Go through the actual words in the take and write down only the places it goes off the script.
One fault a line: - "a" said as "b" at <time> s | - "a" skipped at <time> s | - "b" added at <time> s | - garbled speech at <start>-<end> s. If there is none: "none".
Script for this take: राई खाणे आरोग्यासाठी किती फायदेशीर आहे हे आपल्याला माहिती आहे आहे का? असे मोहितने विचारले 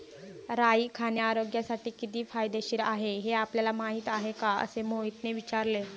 - "आहे" skipped at 4.3 s